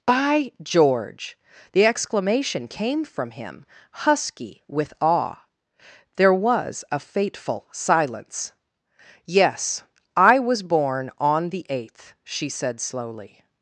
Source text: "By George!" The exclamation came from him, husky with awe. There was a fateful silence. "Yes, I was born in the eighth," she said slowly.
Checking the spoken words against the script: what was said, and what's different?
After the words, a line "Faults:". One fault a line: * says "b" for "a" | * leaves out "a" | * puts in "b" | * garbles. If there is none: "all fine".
"By George!" The exclamation came from him, husky with awe. There was a fateful silence. "Yes, I was born on the eighth," she said slowly.
Faults:
* says "on" for "in"